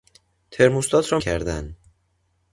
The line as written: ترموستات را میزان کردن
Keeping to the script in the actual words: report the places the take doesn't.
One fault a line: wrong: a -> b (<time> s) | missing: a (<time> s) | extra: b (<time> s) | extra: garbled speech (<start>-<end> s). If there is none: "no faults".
missing: میزان (1.2 s)